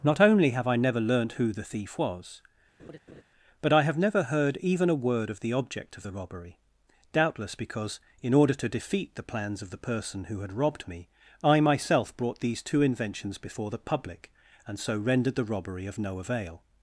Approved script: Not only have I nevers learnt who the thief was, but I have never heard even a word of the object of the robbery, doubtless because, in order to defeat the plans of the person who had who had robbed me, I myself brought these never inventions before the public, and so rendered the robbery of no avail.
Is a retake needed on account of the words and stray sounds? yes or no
yes